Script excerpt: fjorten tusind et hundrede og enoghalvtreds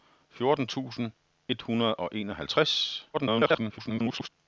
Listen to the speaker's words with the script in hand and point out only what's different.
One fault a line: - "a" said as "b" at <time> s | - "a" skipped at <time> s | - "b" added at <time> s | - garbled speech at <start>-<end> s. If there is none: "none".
- garbled speech at 3.1-4.3 s